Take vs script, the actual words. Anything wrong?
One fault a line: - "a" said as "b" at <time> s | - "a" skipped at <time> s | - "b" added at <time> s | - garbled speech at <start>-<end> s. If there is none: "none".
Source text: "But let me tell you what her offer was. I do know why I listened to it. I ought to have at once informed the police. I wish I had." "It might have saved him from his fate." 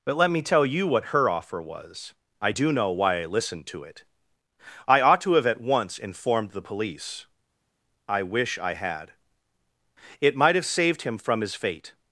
none